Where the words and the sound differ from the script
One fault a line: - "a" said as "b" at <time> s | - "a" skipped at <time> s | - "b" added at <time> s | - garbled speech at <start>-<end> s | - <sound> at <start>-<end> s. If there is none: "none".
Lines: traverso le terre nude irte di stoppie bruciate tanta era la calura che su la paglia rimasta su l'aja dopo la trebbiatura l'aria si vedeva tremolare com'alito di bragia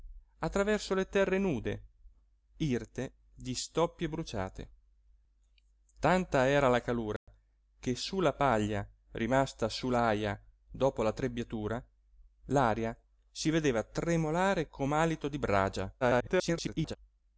- dropout at 7.2-7.3 s
- garbled speech at 16.0-17.0 s